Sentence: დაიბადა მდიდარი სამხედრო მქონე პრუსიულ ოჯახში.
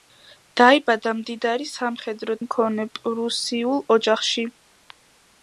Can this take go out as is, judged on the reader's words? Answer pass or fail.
pass